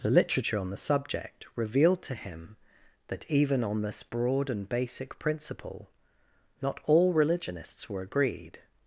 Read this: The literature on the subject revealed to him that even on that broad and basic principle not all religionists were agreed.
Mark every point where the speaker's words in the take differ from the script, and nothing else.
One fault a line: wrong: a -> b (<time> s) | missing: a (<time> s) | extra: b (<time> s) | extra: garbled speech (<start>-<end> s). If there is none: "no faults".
wrong: that -> this (3.8 s)